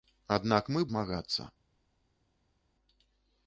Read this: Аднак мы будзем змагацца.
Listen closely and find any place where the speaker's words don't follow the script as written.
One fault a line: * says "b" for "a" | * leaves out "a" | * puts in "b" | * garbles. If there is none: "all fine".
* leaves out "будзем"